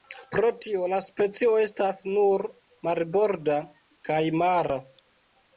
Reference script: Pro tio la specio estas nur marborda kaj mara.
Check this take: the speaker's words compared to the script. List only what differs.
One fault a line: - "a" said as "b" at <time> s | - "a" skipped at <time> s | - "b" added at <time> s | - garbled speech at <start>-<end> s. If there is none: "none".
none